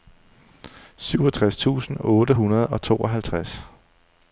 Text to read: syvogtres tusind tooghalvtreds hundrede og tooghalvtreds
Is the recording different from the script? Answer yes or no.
yes